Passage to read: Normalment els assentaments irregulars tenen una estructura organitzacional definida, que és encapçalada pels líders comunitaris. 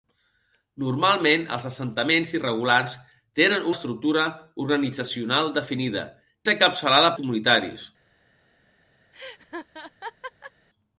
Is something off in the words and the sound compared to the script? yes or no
yes